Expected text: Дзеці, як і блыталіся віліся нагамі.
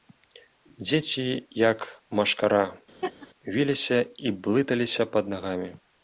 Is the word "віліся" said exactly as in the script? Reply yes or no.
no